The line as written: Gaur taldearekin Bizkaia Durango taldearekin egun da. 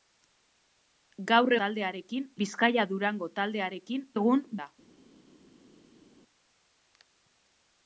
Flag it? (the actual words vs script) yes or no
no